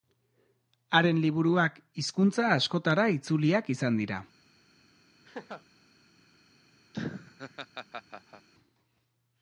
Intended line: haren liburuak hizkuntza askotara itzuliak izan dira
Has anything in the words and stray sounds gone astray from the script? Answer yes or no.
yes